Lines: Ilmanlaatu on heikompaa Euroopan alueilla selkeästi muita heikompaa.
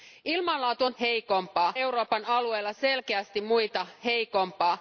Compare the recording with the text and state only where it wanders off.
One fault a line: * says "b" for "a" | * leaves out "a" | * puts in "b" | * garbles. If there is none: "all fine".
all fine